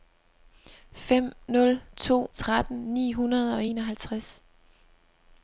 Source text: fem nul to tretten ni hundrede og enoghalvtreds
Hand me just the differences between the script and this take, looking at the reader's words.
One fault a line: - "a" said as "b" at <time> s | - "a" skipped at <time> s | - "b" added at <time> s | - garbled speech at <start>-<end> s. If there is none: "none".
none